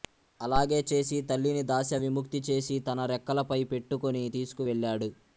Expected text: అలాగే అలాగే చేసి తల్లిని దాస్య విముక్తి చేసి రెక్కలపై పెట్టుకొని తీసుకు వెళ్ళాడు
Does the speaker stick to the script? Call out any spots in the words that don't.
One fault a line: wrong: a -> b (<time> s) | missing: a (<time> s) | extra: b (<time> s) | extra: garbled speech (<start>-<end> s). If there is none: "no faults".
missing: అలాగే (0.8 s)
extra: తన (2.8 s)